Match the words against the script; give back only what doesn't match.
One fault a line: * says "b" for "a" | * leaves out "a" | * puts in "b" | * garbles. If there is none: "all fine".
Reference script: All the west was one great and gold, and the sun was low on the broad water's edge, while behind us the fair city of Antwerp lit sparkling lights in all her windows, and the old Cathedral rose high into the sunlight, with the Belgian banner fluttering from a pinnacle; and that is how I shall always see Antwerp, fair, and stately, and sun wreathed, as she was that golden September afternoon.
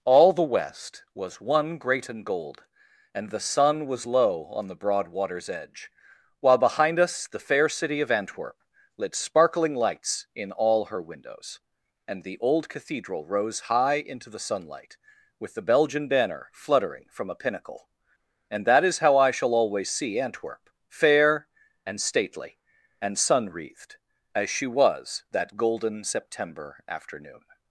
all fine